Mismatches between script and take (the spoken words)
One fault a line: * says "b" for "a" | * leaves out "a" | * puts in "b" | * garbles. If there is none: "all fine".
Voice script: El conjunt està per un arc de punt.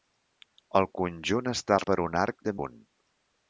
all fine